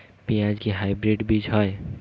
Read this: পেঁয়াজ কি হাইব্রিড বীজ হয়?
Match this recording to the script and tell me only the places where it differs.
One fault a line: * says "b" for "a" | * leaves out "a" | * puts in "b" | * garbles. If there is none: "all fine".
all fine